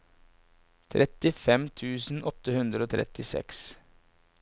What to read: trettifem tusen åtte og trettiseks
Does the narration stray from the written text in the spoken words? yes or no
yes